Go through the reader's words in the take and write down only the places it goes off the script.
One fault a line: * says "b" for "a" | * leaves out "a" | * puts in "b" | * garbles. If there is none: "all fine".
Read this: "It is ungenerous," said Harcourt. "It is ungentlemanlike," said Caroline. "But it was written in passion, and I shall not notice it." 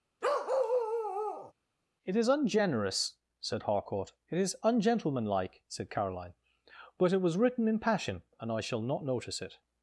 all fine